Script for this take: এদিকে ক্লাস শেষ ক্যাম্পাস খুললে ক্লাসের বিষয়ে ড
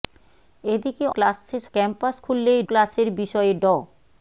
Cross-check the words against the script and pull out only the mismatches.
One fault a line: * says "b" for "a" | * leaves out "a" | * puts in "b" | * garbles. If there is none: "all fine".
all fine